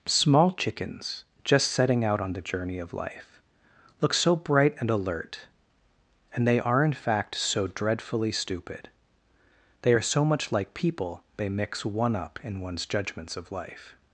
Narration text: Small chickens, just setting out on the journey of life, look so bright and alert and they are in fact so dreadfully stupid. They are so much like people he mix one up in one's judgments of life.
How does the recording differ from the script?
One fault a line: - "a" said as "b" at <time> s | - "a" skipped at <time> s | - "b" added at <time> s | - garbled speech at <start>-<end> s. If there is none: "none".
- "he" said as "they" at 11.4 s